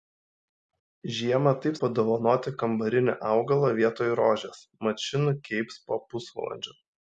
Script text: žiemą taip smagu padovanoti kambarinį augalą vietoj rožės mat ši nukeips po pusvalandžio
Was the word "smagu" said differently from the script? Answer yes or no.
yes